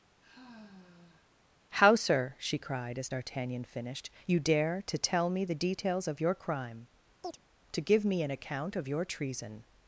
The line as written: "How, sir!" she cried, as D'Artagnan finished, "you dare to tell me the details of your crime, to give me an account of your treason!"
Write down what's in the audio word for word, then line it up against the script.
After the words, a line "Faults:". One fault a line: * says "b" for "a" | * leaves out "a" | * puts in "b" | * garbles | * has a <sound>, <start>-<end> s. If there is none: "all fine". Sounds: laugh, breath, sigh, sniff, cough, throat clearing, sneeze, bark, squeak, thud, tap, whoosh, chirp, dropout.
"How, sir!" she cried, as D'Artagnan finished, "you dare to tell me the details of your crime, to give me an account of your treason!"
Faults:
* has a sigh, 0.2-1.3 s
* has a chirp, 7.2-7.4 s